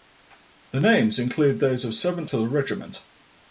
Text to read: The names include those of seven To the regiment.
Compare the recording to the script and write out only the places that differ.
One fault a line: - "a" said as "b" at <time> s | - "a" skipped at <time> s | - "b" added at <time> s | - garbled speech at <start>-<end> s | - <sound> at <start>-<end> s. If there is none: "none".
none